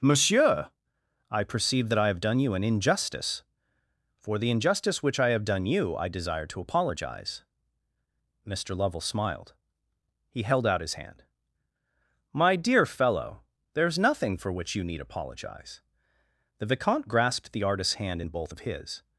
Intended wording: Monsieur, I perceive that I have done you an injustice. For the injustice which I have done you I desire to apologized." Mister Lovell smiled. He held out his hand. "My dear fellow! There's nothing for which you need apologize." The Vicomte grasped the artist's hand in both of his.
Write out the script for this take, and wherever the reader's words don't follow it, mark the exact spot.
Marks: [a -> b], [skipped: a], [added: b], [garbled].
Monsieur, I perceive that I have done you an injustice. For the injustice which I have done you I desire to [apologized." -> apologize] Mister Lovell smiled. He held out his hand. "My dear fellow! There's nothing for which you need apologize." The Vicomte grasped the artist's hand in both of his.